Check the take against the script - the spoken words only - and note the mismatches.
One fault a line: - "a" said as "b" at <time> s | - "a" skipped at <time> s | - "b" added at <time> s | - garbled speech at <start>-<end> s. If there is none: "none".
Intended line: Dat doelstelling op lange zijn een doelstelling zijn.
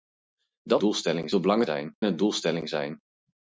none